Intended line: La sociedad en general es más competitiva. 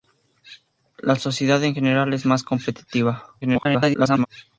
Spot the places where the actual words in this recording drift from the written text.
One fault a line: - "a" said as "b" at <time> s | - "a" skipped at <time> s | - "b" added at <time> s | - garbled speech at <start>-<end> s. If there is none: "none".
- garbled speech at 3.4-4.3 s